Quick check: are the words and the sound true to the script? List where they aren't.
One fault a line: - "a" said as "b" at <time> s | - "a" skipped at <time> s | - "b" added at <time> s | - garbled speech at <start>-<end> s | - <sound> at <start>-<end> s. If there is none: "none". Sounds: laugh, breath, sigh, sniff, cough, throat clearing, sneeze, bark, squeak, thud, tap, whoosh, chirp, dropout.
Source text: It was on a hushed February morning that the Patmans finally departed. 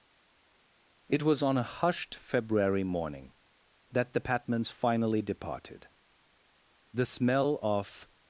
- "The smell of" added at 6.9 s